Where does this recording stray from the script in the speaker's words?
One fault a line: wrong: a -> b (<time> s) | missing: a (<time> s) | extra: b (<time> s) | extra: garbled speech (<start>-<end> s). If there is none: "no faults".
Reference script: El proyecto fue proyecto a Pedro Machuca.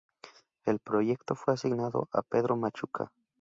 wrong: proyecto -> asignado (1.5 s)